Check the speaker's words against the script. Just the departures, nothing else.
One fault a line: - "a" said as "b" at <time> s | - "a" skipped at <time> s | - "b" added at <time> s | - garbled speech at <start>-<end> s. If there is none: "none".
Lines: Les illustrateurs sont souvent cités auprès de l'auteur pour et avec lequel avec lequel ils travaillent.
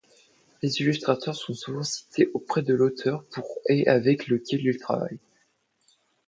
- "avec lequel" skipped at 4.6 s